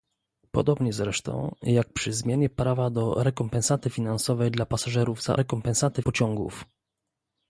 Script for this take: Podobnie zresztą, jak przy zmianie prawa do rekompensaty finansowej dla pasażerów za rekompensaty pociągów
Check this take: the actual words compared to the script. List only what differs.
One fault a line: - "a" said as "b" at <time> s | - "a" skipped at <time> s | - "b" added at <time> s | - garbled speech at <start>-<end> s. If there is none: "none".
none